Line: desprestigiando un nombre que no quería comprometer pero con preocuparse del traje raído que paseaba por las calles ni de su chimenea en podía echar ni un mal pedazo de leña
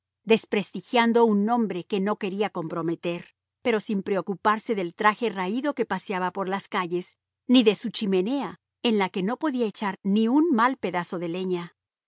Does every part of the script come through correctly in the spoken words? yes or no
no